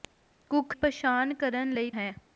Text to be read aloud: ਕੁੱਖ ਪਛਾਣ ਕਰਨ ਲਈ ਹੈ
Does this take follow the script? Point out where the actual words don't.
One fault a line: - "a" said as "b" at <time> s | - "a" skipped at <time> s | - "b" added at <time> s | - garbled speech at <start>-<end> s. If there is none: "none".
none